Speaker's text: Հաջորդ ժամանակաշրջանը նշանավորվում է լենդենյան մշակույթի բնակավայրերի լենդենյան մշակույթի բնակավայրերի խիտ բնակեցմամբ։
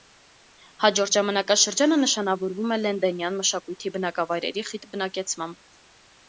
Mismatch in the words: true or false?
true